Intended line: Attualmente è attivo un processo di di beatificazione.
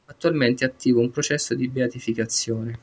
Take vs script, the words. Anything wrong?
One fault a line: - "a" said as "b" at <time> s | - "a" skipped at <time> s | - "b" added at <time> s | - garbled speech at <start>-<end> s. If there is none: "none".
- "di" skipped at 1.7 s